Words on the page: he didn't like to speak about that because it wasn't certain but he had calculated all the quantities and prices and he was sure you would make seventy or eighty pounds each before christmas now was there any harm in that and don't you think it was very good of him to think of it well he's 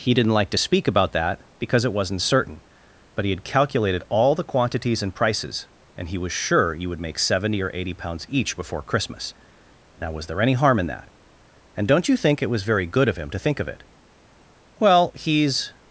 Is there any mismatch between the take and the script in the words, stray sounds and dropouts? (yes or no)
no